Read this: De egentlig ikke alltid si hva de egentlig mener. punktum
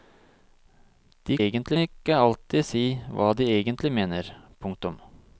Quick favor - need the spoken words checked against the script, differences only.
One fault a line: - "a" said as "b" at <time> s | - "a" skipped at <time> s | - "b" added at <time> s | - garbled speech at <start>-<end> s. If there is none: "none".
none